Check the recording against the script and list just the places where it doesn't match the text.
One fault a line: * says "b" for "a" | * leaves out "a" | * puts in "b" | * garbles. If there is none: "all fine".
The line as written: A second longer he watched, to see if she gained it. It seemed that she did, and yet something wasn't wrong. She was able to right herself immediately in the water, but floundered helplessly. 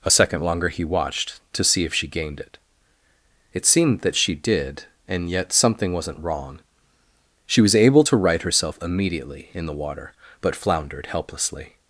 all fine